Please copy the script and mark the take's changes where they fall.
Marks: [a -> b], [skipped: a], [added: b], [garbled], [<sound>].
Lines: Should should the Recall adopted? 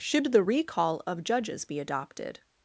Should [skipped: should] the Recall [added: of Judges be] adopted?